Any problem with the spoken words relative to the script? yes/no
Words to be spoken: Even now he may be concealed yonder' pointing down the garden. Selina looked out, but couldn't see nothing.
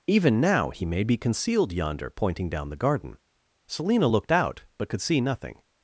yes